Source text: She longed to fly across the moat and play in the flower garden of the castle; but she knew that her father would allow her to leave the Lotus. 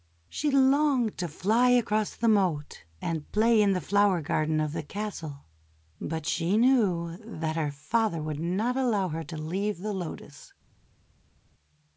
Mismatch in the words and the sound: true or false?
true